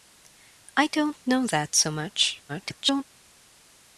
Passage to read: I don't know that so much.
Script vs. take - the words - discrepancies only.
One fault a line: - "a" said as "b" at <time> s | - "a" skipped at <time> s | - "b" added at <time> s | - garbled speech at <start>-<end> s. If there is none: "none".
- garbled speech at 2.5-3.0 s